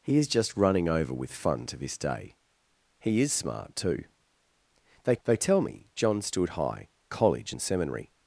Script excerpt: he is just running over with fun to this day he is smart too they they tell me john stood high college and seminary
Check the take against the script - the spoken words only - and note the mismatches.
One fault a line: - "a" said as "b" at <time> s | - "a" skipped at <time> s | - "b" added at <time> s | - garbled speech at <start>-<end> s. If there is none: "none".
none